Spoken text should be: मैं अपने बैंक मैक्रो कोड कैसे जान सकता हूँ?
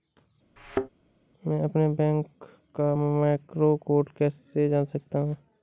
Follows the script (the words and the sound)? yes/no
no